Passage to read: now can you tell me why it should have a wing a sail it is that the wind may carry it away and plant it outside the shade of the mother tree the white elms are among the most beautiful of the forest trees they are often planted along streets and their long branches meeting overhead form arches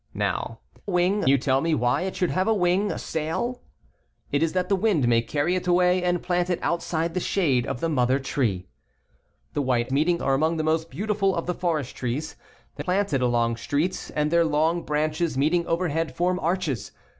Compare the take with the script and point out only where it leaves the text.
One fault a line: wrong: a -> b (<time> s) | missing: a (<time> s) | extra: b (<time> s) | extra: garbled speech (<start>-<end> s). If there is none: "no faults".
wrong: can -> wing (0.9 s)
wrong: elms -> meeting (9.9 s)
missing: are often (12.8 s)